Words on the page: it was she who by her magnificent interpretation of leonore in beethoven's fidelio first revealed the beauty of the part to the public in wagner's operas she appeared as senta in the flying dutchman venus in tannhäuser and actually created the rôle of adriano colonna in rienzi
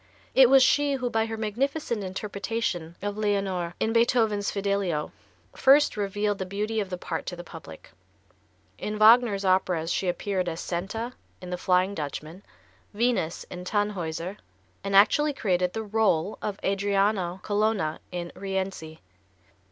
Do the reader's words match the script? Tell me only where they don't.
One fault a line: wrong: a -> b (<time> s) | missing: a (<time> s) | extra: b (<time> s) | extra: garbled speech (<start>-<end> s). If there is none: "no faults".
no faults